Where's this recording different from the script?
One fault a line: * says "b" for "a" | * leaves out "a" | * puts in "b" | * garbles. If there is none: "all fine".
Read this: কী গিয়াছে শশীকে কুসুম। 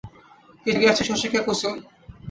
all fine